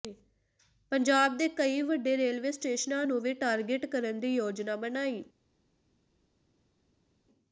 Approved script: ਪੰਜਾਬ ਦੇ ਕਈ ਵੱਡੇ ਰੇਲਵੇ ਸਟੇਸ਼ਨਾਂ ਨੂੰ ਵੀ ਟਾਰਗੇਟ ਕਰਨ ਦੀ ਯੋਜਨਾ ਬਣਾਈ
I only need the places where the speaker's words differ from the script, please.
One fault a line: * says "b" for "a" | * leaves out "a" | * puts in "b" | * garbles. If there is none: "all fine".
all fine